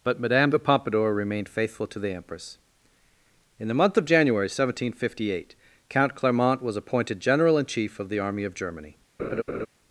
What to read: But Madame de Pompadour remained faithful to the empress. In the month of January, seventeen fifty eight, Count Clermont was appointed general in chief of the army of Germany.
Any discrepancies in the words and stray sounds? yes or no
yes